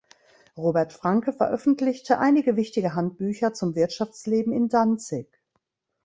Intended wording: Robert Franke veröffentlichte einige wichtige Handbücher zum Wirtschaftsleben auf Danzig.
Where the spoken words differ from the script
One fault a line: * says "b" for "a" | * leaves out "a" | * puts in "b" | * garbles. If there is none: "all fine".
* says "in" for "auf"